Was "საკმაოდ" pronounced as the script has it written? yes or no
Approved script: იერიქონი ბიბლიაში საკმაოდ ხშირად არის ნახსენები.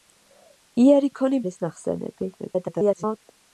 no